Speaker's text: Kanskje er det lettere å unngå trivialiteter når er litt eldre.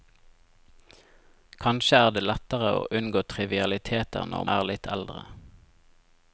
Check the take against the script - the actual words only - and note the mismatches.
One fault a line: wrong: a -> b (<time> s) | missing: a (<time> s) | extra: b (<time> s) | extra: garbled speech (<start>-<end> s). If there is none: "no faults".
no faults